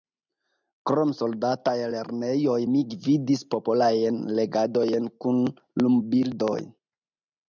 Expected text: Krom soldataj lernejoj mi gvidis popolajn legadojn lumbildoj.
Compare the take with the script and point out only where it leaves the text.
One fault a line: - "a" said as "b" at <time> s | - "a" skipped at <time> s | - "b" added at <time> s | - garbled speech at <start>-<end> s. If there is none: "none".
- "kun" added at 5.3 s